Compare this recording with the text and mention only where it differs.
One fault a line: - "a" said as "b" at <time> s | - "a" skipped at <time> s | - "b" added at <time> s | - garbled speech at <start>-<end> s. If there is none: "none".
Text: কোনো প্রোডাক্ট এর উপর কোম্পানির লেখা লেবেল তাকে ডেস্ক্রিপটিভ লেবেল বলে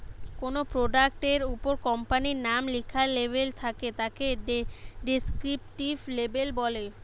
- "নাম" added at 2.5 s
- "থাকে" added at 3.6 s